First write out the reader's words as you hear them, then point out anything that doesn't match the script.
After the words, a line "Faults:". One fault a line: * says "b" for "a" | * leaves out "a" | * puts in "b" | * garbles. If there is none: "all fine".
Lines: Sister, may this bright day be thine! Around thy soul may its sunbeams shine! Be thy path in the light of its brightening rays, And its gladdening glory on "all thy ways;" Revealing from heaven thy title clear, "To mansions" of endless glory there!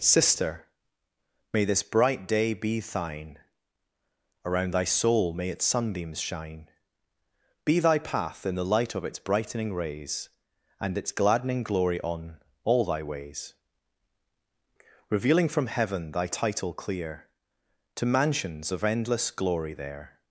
Sister, may this bright day be thine! Around thy soul may its sunbeams shine! Be thy path in the light of its brightening rays, And its gladdening glory on "all thy ways;" Revealing from heaven thy title clear, "To mansions" of endless glory there!
Faults:
all fine